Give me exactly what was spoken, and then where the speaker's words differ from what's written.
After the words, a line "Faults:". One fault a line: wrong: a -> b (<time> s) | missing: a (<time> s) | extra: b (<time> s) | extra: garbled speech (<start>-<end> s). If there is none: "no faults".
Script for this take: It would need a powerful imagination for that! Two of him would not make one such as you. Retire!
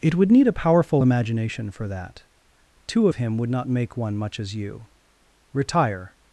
It would need a powerful imagination for that! Two of him would not make one much as you. Retire!
Faults:
wrong: such -> much (4.2 s)